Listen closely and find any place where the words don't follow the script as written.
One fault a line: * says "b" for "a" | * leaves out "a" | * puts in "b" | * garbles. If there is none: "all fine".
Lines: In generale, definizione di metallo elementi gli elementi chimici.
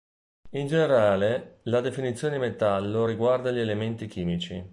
* puts in "la"
* says "riguarda" for "elementi"